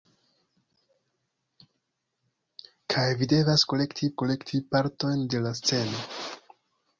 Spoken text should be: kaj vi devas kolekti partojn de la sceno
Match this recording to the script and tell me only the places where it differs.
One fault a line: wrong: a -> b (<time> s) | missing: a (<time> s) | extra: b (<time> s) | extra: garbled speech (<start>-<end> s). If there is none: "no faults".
extra: kolekti (4.2 s)